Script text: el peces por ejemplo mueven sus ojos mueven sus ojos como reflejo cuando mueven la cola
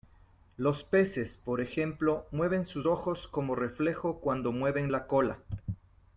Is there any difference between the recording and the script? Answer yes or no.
yes